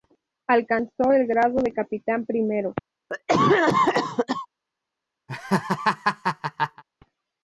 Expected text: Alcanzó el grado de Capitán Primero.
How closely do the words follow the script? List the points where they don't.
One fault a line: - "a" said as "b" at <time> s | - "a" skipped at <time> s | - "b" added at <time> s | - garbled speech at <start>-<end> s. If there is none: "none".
none